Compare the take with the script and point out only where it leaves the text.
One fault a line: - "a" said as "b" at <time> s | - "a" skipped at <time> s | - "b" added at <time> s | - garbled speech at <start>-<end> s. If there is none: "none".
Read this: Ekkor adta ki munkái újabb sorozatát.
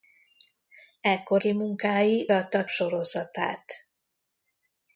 - "adta" skipped at 1.4 s
- "újabb" said as "adta" at 2.3 s